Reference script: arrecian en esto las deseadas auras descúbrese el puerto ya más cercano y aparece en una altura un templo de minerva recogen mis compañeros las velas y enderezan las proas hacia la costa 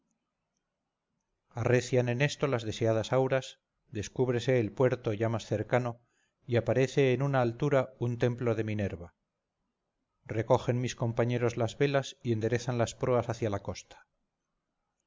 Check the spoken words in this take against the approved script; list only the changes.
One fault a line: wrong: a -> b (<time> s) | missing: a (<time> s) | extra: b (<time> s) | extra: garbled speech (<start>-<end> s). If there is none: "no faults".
no faults